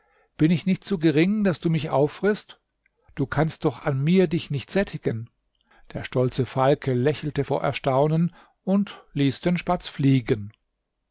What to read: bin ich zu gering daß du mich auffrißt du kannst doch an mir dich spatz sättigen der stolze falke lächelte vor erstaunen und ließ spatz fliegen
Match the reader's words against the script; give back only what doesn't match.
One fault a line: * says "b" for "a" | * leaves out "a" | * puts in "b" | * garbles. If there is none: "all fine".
* puts in "nicht"
* says "nicht" for "spatz"
* puts in "den"